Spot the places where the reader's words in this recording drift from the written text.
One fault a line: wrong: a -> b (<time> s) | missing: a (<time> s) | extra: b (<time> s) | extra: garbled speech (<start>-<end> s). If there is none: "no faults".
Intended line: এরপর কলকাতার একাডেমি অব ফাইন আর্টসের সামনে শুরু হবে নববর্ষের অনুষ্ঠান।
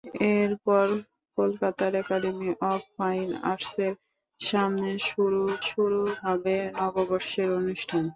extra: শুরু (5.7 s)